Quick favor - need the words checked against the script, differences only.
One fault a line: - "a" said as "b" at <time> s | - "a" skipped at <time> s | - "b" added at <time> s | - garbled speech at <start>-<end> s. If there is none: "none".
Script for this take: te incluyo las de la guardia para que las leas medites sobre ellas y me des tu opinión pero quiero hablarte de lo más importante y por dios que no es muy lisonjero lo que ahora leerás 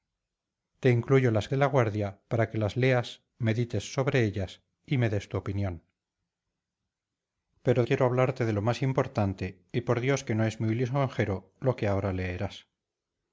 none